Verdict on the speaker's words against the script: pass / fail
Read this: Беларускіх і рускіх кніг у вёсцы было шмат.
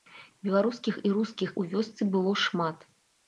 fail